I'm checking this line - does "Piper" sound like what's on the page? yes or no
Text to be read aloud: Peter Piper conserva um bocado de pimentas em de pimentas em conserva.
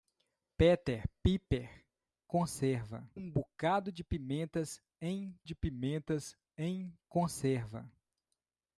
yes